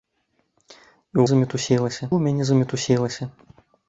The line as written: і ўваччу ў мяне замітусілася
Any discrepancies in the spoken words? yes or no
yes